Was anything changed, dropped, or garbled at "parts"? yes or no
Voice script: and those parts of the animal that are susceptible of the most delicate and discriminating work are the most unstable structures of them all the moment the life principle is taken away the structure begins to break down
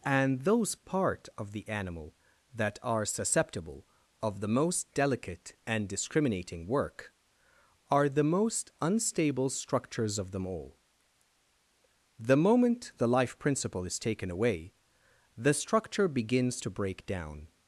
yes